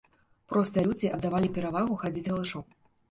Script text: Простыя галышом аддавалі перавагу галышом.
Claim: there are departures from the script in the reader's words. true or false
true